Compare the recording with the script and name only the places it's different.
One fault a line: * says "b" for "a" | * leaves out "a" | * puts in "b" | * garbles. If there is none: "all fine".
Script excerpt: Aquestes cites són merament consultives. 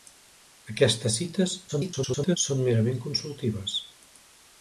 * garbles